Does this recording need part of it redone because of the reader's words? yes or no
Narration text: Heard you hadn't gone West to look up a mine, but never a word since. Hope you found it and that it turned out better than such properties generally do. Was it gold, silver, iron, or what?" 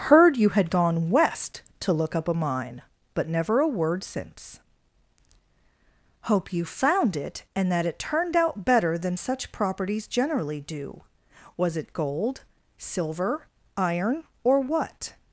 yes